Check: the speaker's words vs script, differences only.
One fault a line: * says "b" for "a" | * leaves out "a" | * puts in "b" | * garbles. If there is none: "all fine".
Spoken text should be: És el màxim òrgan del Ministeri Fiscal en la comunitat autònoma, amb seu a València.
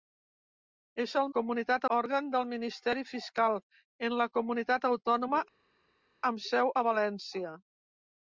* says "comunitat" for "màxim"